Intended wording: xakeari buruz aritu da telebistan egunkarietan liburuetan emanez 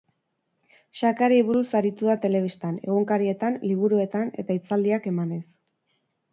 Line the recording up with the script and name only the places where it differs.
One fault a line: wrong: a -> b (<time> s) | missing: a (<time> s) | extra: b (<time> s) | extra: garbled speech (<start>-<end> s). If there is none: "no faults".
extra: eta hitzaldiak (4.5 s)